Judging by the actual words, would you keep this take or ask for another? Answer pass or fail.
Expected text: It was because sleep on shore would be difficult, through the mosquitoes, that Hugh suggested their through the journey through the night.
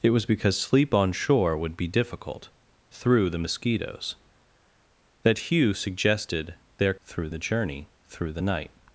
pass